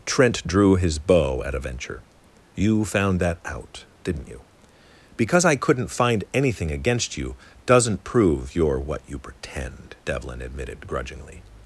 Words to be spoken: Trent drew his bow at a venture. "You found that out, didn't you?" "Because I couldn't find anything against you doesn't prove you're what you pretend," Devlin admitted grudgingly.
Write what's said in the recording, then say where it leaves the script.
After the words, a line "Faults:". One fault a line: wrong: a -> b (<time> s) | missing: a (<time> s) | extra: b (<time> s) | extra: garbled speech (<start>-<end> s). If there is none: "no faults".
Trent drew his bow at a venture. "You found that out, didn't you?" "Because I couldn't find anything against you doesn't prove you're what you pretend," Devlin admitted grudgingly.
Faults:
no faults